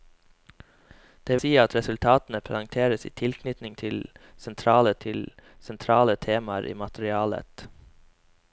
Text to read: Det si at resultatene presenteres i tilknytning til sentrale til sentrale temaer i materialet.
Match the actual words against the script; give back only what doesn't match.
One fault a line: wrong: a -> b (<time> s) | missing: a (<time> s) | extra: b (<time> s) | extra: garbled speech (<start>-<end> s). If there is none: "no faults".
no faults